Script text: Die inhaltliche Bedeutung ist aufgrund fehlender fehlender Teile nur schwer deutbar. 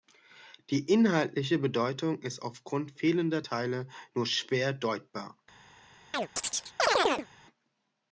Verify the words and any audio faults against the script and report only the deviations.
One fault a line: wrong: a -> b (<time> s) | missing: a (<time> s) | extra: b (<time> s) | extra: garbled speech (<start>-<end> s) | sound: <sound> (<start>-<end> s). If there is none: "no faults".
missing: fehlender (3.5 s)
sound: chirp (6.1-7.3 s)